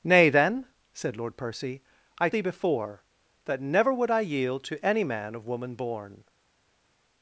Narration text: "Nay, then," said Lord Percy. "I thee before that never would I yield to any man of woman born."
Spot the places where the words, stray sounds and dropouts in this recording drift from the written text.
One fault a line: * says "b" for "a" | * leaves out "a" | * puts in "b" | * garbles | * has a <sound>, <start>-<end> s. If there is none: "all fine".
all fine